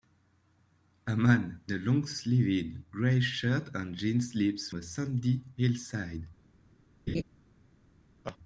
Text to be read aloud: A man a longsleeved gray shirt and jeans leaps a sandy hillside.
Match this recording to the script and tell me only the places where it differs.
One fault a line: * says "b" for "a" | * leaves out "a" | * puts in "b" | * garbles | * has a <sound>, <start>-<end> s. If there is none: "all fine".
* has a laugh, 7.1-7.2 s
* has a laugh, 8.2-8.4 s